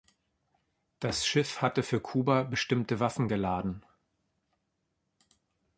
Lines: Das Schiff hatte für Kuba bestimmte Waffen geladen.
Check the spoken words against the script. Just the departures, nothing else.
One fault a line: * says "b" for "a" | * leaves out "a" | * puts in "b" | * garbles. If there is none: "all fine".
all fine